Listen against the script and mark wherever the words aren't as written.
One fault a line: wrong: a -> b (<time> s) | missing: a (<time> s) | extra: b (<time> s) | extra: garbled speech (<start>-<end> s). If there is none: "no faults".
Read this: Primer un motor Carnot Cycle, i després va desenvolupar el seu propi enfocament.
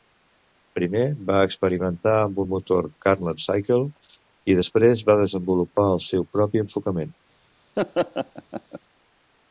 extra: va experimentar amb (1.3 s)